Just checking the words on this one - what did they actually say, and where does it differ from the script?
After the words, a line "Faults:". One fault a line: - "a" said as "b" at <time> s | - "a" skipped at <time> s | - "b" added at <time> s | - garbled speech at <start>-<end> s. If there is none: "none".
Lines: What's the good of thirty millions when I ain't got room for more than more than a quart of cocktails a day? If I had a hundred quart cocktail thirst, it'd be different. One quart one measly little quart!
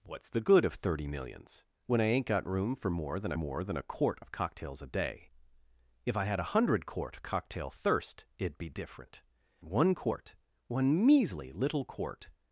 What's the good of thirty millions when I ain't got room for more than more than a quart of cocktails a day? If I had a hundred quart cocktail thirst, it'd be different. One quart one measly little quart!
Faults:
none